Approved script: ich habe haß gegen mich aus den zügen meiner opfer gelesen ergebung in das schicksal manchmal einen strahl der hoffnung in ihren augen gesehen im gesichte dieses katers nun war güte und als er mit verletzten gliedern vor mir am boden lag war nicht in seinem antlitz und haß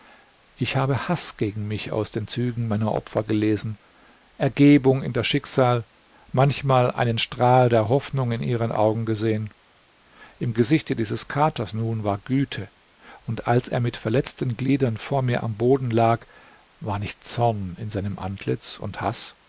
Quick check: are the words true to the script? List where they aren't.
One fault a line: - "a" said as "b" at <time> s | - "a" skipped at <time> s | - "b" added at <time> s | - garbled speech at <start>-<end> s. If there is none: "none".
- "zorn" added at 17.2 s